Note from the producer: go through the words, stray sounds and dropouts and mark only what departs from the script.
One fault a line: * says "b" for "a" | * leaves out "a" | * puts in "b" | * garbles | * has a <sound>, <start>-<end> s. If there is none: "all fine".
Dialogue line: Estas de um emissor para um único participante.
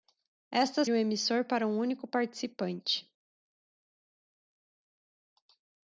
all fine